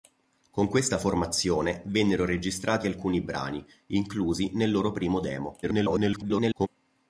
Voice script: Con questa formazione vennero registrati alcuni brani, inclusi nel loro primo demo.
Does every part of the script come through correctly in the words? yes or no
no